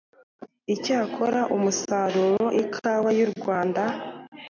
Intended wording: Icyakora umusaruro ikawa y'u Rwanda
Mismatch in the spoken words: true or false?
false